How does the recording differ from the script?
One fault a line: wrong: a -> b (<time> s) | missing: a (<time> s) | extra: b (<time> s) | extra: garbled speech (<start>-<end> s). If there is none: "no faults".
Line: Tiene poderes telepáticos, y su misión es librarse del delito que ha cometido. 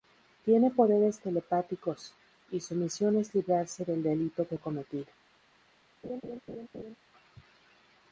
no faults